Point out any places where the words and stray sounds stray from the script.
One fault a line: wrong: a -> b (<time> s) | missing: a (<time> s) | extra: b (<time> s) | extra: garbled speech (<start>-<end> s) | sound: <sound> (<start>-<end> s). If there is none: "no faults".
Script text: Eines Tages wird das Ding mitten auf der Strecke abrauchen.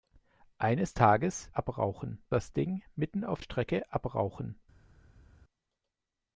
wrong: wird -> abrauchen (1.5 s)
missing: der (3.4 s)